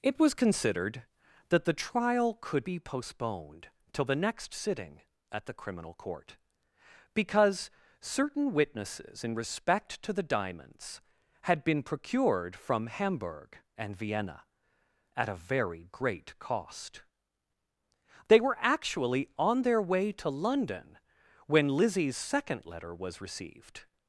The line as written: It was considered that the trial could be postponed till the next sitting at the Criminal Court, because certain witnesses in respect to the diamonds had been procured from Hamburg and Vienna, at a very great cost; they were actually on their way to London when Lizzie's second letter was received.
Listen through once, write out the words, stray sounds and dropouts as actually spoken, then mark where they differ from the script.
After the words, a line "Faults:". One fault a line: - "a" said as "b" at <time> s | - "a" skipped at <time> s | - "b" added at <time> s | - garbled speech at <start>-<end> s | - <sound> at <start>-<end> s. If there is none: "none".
It was considered that the trial could be postponed till the next sitting at the Criminal Court, because certain witnesses in respect to the diamonds had been procured from Hamburg and Vienna, at a very great cost; they were actually on their way to London when Lizzie's second letter was received.
Faults:
none